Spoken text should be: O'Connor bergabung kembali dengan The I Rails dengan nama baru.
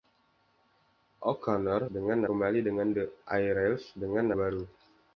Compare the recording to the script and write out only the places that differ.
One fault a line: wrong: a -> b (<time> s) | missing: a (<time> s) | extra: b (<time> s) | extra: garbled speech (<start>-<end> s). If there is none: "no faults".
wrong: bergabung -> dengan (1.9 s)
missing: nama (4.3 s)